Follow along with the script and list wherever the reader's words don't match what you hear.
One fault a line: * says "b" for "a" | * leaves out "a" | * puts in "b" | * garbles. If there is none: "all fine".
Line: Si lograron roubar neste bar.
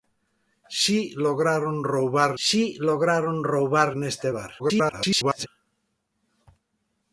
* puts in "si lograron roubar"
* garbles